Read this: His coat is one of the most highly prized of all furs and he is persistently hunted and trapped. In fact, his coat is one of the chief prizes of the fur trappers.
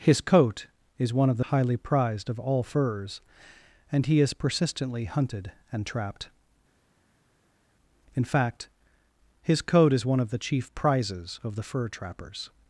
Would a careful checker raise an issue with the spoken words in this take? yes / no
yes